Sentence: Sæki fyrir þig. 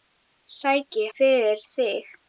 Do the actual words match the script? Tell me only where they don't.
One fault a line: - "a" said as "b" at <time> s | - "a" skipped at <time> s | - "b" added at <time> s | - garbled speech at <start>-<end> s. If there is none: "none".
none